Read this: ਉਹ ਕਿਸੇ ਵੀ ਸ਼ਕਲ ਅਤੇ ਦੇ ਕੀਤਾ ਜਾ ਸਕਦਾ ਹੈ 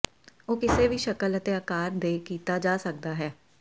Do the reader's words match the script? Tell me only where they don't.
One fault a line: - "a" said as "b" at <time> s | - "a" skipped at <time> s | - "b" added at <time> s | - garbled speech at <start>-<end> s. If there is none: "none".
- "ਆਕਾਰ" added at 1.5 s